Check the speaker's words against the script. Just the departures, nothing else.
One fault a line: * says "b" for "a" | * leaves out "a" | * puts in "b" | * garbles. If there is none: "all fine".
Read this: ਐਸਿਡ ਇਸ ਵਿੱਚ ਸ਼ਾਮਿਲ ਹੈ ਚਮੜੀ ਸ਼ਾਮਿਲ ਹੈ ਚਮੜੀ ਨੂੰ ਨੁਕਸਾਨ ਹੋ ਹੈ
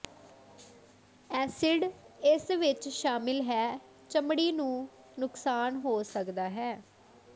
* leaves out "ਸ਼ਾਮਿਲ ਹੈ ਚਮੜੀ"
* puts in "ਸਕਦਾ"